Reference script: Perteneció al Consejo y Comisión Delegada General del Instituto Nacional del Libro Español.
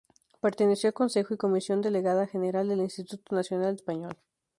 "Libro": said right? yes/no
no